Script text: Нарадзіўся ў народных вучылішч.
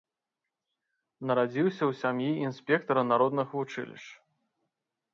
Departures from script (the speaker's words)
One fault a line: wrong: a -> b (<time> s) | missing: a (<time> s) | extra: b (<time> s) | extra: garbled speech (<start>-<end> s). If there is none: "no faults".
extra: сям'і інспектара (2.0 s)